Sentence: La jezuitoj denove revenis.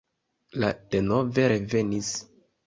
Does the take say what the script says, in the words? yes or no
no